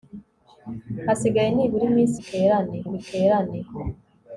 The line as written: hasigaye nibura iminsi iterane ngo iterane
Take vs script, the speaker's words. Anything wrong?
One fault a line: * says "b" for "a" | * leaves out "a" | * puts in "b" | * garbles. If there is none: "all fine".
all fine